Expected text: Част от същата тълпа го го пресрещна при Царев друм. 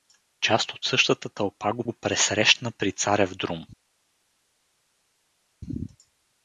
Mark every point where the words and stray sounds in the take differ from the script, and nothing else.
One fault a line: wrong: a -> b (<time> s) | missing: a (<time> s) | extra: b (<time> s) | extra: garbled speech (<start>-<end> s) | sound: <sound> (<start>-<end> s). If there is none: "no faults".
no faults